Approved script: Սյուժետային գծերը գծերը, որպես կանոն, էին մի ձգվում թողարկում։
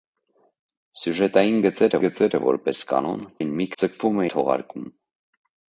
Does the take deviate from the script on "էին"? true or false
false